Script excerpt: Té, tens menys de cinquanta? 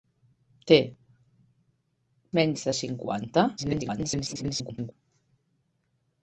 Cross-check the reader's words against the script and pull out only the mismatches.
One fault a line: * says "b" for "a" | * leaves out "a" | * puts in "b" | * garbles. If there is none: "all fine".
* leaves out "tens"
* garbles